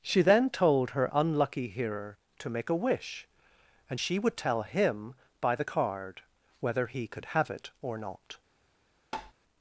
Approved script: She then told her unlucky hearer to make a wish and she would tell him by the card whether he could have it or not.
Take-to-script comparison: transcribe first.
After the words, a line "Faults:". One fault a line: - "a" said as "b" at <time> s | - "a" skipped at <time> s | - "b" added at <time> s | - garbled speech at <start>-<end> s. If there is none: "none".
She then told her unlucky hearer to make a wish and she would tell him by the card whether he could have it or not.
Faults:
none